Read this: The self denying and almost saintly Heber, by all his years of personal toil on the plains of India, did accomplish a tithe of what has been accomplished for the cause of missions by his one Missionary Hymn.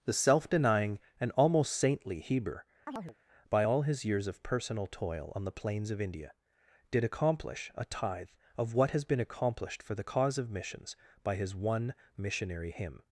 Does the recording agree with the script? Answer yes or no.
yes